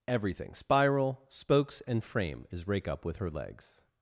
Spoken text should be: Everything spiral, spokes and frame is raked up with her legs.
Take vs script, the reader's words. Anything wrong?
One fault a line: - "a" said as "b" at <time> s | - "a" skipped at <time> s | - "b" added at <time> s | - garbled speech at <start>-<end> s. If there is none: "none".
- "raked" said as "rake" at 2.7 s